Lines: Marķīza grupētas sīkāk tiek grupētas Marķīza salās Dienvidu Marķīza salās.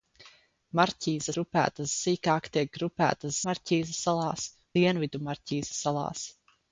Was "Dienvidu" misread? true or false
false